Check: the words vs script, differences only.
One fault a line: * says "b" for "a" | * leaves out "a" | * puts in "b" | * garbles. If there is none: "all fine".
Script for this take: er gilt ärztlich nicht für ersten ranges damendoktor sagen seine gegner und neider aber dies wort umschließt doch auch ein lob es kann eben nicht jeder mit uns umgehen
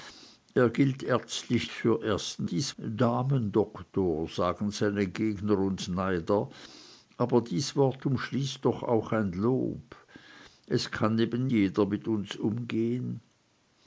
* leaves out "nicht"
* says "dies" for "ranges"
* leaves out "nicht"